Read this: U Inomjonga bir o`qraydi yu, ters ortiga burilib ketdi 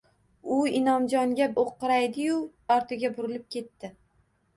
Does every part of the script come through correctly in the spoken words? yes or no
no